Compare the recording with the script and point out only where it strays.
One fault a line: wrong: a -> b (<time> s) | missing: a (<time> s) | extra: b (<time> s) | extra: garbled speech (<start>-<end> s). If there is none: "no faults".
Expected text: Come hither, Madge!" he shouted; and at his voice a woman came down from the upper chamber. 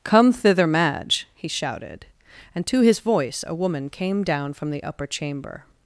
wrong: hither -> thither (0.3 s)
wrong: at -> to (2.7 s)